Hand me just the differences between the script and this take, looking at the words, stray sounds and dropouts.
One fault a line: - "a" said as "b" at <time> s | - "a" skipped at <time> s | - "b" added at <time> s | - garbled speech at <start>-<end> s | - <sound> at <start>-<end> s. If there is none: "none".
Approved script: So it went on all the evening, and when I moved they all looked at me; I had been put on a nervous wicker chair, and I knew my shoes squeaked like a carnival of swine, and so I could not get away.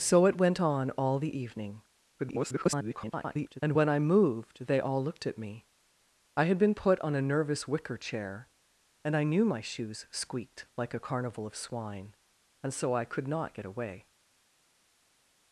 - garbled speech at 2.2-3.6 s